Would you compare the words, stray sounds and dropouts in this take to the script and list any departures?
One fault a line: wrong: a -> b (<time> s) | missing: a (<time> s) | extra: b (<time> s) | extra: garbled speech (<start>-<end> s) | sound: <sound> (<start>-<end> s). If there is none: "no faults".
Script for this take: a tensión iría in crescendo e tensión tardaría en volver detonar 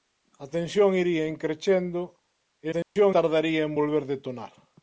sound: dropout (2.8-3.0 s)